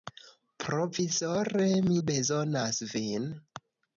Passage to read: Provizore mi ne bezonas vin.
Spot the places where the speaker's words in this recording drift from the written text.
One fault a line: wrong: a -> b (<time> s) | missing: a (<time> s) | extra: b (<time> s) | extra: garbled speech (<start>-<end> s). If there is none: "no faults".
missing: ne (2.0 s)